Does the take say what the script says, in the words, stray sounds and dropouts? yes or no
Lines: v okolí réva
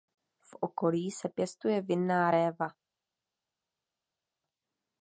no